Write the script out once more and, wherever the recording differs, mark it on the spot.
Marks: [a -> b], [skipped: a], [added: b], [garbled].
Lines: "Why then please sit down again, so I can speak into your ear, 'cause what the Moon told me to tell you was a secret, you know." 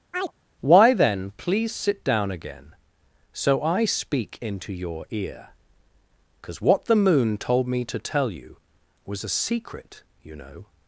"Why then please sit down again, so I [skipped: can] speak into your ear, 'cause what the Moon told me to tell you was a secret, you know."